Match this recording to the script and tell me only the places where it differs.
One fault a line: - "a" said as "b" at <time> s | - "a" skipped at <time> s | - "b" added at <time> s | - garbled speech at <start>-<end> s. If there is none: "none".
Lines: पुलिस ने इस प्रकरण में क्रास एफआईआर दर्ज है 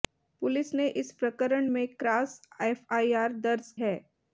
none